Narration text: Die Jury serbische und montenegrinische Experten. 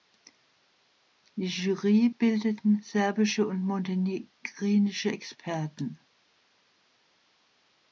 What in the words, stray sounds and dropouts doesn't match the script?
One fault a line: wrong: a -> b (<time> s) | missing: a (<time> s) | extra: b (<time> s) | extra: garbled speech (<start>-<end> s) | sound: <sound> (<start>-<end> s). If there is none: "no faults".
extra: bildeten (2.1 s)